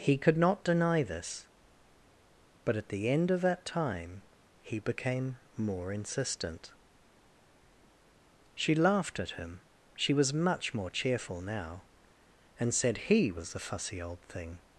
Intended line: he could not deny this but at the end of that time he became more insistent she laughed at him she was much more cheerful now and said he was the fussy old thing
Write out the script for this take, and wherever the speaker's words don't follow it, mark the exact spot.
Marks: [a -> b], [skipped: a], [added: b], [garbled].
he could not deny this but at the end of that time he became more insistent she laughed at him she was much more cheerful now and said he was the fussy old thing